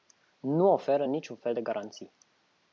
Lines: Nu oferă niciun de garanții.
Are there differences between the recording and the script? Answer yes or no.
yes